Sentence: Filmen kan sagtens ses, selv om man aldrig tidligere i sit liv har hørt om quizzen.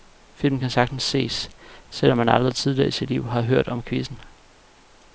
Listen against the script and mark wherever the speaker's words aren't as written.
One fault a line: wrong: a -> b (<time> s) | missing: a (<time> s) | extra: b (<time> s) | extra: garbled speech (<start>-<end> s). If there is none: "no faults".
no faults